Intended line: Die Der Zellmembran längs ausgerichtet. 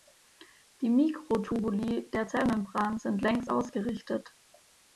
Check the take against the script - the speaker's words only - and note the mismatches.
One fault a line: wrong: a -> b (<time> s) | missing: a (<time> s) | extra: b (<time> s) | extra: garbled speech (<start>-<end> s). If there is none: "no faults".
extra: Mikrotubuli (0.9 s)
extra: sind (3.0 s)